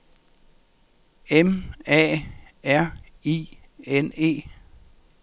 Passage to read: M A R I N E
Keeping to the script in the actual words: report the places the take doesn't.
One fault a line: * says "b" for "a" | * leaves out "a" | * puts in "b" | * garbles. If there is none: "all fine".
all fine